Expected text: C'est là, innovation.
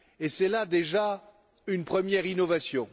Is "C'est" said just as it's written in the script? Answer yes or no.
yes